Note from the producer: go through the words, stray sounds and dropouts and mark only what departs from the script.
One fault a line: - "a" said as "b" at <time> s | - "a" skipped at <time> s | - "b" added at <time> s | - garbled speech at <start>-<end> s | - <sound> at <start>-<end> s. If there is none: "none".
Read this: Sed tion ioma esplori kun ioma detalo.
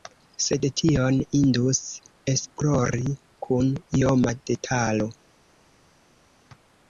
- "ioma" said as "indus" at 1.4 s